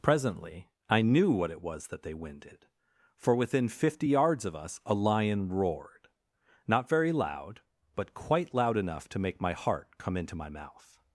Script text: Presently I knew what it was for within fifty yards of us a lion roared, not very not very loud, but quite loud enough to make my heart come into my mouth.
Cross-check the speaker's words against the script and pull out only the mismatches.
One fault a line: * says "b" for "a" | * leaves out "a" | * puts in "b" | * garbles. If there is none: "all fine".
* puts in "that they winded"
* leaves out "not very"